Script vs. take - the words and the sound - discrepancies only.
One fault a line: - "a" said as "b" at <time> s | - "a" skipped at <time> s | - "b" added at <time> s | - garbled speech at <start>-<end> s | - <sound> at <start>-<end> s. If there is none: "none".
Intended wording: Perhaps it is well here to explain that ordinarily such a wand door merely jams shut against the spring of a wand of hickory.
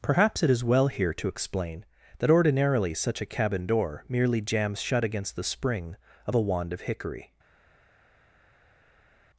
- "wand" said as "cabin" at 3.2 s